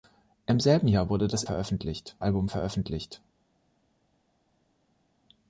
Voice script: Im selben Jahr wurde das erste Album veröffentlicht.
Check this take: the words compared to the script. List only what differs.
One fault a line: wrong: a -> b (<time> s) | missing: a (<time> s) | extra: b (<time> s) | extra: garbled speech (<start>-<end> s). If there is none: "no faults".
wrong: erste -> veröffentlicht (1.4 s)